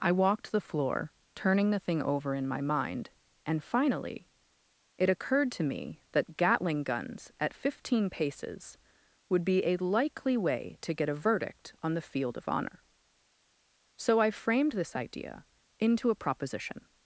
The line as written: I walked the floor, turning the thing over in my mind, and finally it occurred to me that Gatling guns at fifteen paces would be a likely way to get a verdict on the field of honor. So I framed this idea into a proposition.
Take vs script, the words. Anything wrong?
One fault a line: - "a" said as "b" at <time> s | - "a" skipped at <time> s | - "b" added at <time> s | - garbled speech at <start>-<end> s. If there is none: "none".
none